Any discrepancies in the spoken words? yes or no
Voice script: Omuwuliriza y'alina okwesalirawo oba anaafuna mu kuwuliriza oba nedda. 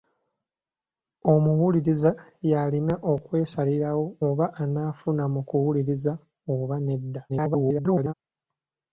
yes